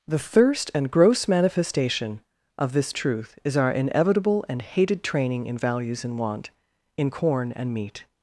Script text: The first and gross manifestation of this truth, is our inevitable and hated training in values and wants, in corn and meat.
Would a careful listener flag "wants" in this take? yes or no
yes